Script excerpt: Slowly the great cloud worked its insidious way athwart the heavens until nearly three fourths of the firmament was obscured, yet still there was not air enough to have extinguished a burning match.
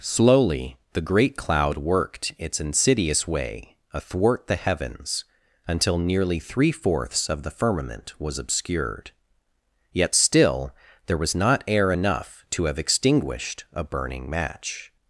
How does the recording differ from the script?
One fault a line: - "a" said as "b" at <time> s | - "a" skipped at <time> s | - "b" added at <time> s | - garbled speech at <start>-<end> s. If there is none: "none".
none